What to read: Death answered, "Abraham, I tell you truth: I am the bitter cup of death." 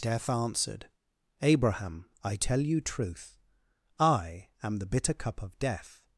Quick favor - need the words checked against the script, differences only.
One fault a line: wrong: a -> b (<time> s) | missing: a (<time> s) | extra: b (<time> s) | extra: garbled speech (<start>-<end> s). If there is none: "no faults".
no faults